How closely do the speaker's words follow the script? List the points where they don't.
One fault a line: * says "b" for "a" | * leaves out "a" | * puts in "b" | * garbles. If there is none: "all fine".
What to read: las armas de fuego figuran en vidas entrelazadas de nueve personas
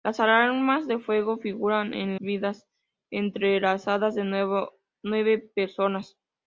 all fine